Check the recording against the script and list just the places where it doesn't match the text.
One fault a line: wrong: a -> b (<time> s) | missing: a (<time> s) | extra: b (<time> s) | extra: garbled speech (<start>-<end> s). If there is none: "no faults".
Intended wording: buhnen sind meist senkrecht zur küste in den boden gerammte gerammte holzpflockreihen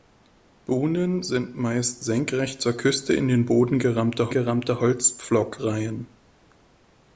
no faults